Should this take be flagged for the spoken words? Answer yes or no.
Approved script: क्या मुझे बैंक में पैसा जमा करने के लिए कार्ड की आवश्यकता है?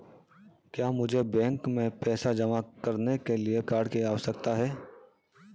no